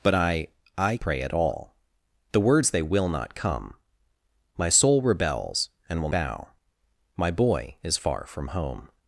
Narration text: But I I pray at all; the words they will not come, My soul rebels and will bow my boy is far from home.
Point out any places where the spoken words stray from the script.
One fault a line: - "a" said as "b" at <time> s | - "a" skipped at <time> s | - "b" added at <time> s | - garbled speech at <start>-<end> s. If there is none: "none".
none